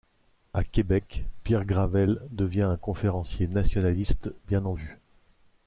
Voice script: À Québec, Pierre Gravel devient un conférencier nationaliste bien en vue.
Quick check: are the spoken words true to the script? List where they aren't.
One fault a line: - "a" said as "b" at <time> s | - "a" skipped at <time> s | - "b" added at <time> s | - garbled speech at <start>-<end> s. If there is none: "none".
none